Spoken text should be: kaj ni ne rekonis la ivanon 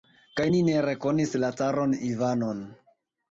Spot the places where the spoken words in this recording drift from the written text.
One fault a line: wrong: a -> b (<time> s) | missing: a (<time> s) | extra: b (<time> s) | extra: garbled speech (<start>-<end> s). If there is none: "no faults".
extra: caron (1.6 s)